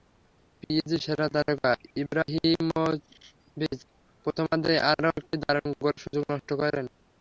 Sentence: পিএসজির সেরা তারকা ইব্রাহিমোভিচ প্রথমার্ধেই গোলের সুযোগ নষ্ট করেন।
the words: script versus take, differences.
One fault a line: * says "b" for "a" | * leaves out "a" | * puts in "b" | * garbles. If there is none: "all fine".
* puts in "আরও একটি দারুণ"